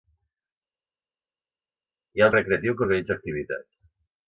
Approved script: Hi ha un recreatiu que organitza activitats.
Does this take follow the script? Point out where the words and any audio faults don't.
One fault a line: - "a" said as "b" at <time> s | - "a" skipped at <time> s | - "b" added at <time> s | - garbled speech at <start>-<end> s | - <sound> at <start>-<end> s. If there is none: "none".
none